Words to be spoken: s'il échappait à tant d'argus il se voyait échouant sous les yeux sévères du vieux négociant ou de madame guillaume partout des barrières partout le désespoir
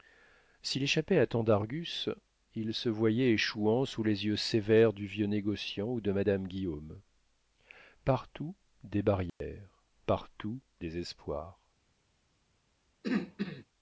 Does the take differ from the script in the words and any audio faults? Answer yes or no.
yes